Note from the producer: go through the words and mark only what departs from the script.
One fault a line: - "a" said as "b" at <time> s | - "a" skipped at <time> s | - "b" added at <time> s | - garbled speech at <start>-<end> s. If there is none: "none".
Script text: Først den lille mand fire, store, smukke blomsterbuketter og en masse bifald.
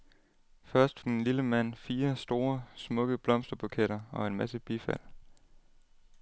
none